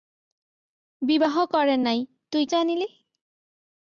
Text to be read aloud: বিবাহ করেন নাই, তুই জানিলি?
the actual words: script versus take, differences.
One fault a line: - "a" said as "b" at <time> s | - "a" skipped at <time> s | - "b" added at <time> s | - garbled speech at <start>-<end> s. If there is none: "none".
none